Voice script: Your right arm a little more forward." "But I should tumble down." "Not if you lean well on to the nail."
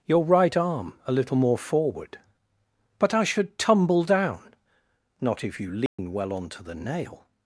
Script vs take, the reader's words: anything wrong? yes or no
no